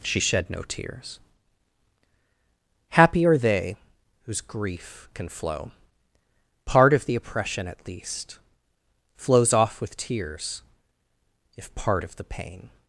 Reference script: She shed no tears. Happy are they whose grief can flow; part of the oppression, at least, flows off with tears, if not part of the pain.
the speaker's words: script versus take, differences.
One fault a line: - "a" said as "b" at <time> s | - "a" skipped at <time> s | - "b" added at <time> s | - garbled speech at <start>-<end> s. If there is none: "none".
- "not" skipped at 11.7 s